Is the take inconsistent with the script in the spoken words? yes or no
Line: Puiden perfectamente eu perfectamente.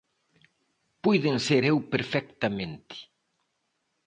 yes